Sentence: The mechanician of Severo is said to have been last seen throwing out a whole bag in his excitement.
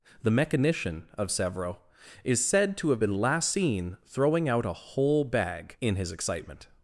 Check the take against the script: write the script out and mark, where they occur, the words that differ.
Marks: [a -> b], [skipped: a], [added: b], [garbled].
The mechanician of Severo is said to have been last seen throwing out a whole bag in his excitement.